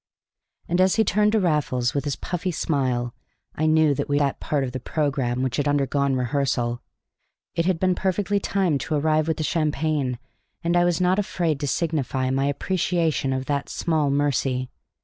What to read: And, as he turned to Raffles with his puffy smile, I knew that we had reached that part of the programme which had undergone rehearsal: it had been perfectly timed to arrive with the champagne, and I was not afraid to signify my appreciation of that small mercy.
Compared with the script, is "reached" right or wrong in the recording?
wrong